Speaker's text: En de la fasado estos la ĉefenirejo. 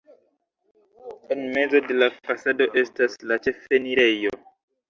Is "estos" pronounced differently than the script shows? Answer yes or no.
yes